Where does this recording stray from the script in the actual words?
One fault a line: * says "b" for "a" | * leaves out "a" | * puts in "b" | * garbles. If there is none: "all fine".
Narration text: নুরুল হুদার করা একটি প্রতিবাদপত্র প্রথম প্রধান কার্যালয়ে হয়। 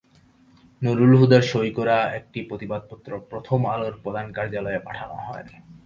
* puts in "সই"
* puts in "আলোর"
* puts in "পাঠানো"